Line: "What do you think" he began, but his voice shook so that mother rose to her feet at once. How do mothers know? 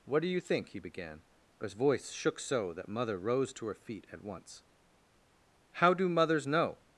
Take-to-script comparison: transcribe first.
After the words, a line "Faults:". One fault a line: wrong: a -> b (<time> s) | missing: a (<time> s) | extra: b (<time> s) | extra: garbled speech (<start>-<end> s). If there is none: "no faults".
"What do you think" he began, but his voice shook so that mother rose to her feet at once. How do mothers know?
Faults:
no faults